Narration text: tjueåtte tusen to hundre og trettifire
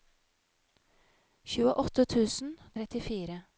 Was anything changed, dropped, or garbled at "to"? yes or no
yes